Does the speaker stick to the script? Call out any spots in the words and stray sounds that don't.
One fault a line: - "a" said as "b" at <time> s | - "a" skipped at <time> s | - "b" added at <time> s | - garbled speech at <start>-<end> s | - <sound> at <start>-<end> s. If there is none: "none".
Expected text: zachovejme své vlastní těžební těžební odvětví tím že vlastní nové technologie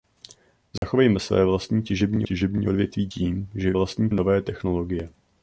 - dropout at 0.8-0.8 s